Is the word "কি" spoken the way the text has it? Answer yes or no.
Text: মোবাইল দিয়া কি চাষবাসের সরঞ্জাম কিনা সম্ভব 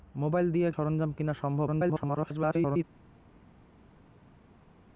no